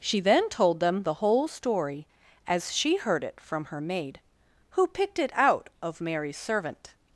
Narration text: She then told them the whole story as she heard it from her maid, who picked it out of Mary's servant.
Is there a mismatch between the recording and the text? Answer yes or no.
no